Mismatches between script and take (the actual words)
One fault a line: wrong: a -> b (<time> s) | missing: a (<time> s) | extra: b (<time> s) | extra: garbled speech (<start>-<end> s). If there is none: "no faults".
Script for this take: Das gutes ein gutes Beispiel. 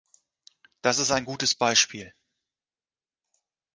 wrong: gutes -> ist (1.0 s)